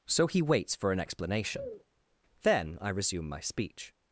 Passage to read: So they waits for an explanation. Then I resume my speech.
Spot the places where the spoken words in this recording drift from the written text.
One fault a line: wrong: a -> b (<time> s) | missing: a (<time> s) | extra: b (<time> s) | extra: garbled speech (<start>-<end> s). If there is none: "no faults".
wrong: they -> he (0.3 s)